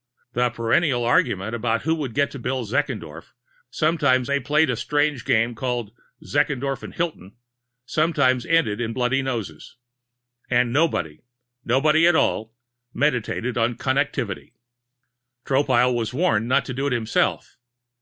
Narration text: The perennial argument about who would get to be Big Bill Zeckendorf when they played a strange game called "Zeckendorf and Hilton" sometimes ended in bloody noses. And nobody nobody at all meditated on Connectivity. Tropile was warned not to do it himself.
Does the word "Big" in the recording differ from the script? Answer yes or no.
yes